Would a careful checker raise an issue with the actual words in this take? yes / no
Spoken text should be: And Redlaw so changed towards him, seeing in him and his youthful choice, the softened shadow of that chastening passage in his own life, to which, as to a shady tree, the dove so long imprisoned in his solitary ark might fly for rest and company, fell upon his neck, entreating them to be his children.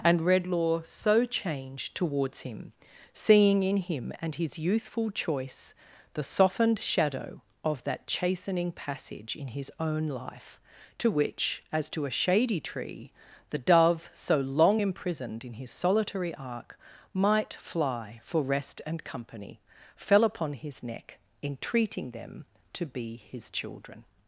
no